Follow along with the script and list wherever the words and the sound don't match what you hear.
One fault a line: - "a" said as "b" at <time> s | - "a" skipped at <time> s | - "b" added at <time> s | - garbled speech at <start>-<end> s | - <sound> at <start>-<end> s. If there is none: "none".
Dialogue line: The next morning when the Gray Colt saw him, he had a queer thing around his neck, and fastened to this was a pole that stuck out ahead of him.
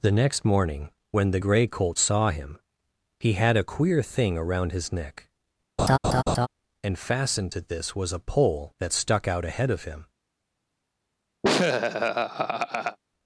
- laugh at 5.8-6.5 s
- laugh at 11.4-13.0 s